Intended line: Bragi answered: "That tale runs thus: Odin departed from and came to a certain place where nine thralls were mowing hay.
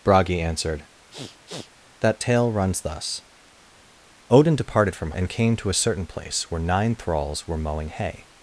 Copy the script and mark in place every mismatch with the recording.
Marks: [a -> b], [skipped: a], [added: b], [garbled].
Bragi answered: "That tale runs thus: Odin departed from and came to a certain place where nine thralls were mowing hay.